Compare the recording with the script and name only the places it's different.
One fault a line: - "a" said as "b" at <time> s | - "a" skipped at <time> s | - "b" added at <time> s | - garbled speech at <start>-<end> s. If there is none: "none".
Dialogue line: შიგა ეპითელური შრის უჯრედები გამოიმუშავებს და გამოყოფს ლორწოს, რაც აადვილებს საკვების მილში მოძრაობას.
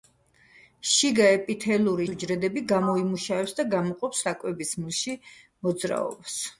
- "შრის" skipped at 2.1 s
- "ლორწოს რაც აადვილებს" skipped at 4.2 s